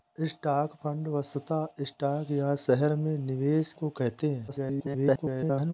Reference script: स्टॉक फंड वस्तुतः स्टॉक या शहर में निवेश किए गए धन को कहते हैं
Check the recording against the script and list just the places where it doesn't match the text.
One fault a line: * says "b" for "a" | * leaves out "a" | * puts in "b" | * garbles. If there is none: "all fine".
* leaves out "किए गए धन"
* garbles